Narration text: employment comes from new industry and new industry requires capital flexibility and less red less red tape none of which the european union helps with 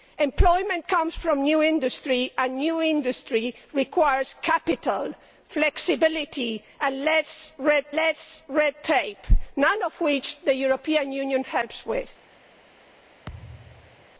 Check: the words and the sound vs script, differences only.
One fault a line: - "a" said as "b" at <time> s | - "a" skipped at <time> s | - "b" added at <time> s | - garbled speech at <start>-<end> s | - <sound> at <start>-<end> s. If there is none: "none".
- thud at 13.3-14.1 s